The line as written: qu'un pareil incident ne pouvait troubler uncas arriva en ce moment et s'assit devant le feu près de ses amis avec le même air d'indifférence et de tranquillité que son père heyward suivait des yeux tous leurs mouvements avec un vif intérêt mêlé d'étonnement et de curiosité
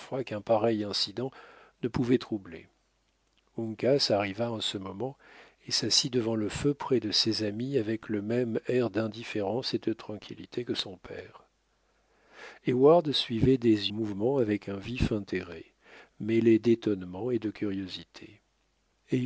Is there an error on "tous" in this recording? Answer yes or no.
yes